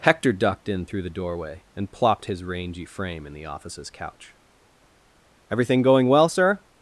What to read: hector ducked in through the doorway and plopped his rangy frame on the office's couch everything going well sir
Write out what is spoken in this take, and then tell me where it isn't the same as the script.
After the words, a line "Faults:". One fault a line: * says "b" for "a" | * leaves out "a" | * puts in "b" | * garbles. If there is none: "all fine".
hector ducked in through the doorway and plopped his rangy frame in the office's couch everything going well sir
Faults:
* says "in" for "on"